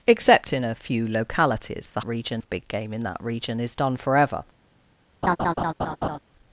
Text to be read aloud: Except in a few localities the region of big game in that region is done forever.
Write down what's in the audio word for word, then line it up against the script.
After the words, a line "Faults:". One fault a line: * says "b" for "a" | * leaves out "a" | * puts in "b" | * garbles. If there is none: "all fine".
Except in a few localities the region of big game in that region is done forever.
Faults:
all fine